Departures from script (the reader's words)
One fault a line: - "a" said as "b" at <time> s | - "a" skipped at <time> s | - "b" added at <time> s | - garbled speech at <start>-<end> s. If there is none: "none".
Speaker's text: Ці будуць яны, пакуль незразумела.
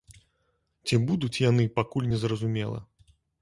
none